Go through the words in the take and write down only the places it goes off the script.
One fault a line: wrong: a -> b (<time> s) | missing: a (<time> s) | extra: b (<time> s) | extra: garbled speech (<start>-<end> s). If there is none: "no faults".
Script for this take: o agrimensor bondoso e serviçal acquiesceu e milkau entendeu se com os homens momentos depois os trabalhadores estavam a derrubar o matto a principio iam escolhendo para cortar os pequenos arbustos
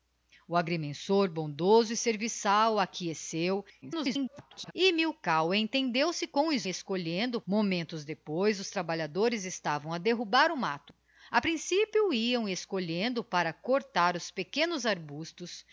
extra: garbled speech (3.8-4.7 s)
wrong: homens -> escolhendo (6.6 s)